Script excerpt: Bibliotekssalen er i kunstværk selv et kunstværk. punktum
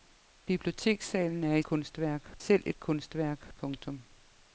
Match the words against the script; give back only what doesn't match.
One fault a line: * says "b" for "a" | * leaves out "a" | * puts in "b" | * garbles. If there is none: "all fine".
all fine